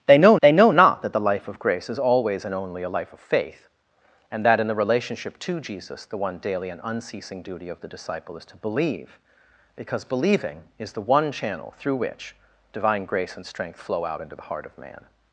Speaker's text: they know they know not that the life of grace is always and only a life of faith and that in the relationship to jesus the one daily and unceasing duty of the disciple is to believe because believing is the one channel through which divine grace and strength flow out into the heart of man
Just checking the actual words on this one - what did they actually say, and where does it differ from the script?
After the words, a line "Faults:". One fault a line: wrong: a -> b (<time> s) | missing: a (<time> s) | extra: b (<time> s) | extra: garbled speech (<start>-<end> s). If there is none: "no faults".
they know they know not that the life of grace is always and only a life of faith and that in the relationship to jesus the one daily and unceasing duty of the disciple is to believe because believing is the one channel through which divine grace and strength flow out into the heart of man
Faults:
no faults